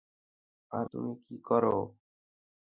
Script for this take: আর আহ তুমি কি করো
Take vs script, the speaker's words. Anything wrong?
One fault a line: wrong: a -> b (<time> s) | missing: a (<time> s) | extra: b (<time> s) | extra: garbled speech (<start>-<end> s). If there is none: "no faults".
missing: আহ (0.9 s)